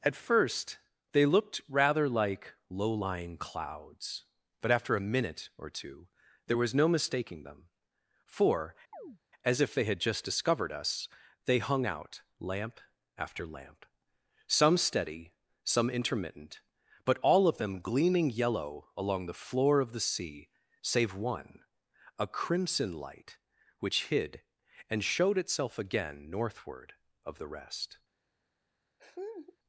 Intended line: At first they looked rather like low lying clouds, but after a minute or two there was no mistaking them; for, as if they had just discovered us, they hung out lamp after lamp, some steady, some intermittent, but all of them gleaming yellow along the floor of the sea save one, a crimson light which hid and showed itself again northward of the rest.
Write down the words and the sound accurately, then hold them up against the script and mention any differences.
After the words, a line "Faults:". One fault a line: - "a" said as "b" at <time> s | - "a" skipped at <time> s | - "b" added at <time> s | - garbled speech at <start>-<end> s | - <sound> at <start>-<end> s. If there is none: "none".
At first they looked rather like low lying clouds, but after a minute or two there was no mistaking them; for, as if they had just discovered us, they hung out lamp after lamp, some steady, some intermittent, but all of them gleaming yellow along the floor of the sea save one, a crimson light which hid and showed itself again northward of the rest.
Faults:
- chirp at 8.9-9.2 s
- laugh at 29.0-29.6 s